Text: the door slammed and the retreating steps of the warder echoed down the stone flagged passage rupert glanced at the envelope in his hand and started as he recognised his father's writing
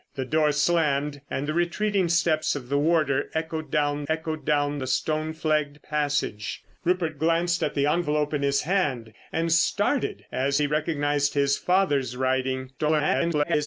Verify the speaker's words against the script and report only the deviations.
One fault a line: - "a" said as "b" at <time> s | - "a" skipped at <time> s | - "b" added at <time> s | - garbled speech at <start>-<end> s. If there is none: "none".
- "echoed down" added at 4.1 s
- garbled speech at 12.8-13.7 s